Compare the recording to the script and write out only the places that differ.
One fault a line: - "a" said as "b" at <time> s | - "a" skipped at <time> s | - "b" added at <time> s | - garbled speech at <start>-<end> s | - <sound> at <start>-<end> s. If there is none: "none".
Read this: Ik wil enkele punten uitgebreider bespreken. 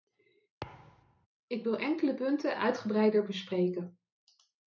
- thud at 0.6-1.3 s